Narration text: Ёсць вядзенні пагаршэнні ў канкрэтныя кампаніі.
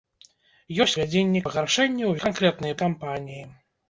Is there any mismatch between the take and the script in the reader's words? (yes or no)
no